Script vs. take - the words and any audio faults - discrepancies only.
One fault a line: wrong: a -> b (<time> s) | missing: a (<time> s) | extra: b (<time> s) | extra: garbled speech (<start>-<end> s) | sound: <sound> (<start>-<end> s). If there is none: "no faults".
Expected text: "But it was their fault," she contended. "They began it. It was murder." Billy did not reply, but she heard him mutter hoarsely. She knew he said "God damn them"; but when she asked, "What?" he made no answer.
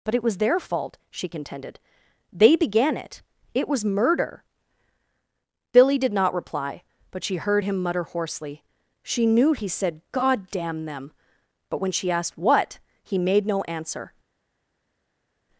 no faults